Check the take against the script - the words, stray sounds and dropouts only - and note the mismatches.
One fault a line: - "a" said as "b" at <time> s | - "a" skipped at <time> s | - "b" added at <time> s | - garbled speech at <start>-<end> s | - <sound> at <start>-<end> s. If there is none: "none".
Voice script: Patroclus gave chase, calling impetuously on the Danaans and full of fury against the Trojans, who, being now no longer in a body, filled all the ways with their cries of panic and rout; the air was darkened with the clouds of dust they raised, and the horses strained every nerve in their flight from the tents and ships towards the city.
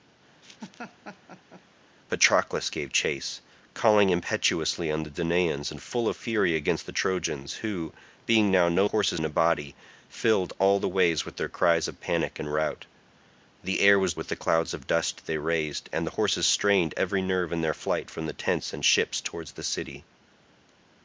- laugh at 0.4-1.6 s
- "longer" said as "horses" at 8.9 s
- "darkened" skipped at 14.1 s